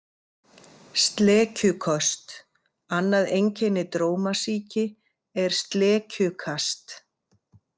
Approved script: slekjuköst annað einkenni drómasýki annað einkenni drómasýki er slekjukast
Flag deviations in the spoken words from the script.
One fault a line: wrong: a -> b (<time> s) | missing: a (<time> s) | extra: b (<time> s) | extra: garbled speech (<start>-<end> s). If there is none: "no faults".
missing: annað einkenni drómasýki (4.9 s)